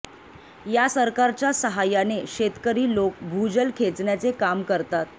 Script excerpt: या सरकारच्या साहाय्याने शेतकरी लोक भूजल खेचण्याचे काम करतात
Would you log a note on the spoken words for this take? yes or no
no